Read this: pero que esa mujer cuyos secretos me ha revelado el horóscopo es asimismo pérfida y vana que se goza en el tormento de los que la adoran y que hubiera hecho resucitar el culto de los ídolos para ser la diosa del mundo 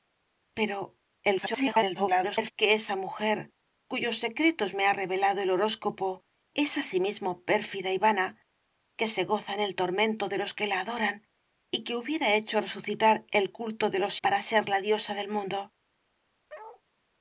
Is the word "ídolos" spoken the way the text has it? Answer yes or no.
no